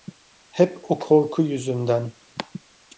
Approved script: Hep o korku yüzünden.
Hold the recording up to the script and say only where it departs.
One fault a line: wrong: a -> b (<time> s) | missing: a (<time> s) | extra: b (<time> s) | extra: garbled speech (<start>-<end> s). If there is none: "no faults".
no faults